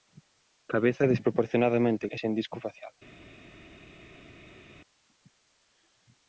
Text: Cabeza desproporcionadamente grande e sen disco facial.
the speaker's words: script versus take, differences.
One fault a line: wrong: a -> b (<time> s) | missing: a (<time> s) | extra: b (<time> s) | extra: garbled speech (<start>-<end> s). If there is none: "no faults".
missing: grande (2.0 s)